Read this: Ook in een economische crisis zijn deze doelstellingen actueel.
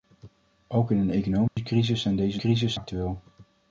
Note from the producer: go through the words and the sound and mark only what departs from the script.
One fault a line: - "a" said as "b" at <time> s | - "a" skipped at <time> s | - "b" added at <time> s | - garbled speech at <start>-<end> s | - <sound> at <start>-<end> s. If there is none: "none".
- dropout at 1.5-1.6 s
- "doelstellingen" said as "crisis" at 2.4 s